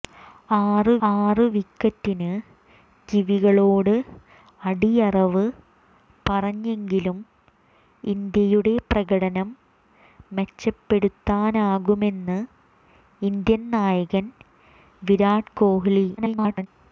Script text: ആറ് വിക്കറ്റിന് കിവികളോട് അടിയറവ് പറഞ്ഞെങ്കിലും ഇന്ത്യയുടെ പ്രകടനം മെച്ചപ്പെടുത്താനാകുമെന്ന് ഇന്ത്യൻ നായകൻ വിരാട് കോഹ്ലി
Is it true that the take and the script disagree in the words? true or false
true